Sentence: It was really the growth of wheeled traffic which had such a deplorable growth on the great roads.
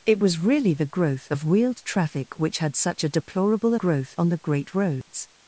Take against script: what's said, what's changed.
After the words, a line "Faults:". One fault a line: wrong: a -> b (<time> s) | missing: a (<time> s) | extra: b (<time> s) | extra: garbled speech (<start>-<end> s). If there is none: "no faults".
It was really the growth of wheeled traffic which had such a deplorable growth on the great roads.
Faults:
no faults